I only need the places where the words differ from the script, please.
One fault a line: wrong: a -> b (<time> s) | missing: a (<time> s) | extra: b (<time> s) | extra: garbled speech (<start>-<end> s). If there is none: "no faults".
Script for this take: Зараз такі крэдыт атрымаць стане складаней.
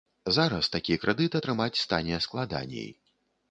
no faults